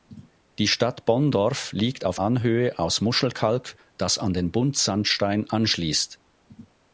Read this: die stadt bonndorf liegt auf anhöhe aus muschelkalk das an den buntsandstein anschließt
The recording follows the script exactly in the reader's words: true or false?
true